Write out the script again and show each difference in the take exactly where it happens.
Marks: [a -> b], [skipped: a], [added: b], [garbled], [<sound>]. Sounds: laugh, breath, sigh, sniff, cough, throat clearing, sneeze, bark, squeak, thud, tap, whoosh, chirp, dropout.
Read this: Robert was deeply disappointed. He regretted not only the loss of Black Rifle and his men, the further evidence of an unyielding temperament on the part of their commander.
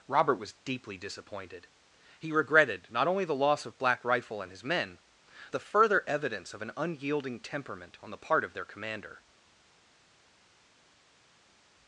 Robert was deeply disappointed. He regretted not only the loss of Black Rifle and his men, the further evidence of an unyielding temperament on the part of their commander.